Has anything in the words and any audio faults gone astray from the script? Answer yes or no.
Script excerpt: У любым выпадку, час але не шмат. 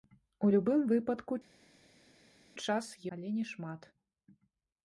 no